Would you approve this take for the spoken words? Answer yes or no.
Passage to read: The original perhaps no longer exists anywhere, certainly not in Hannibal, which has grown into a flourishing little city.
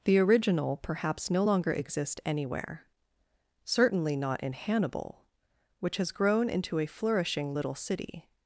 no